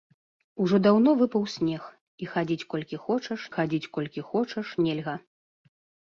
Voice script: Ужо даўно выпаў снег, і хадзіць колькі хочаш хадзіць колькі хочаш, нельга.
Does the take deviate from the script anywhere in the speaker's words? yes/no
no